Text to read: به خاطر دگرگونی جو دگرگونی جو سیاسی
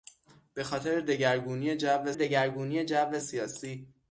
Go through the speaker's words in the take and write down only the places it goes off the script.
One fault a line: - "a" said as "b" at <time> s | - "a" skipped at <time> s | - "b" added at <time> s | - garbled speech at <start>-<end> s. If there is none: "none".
none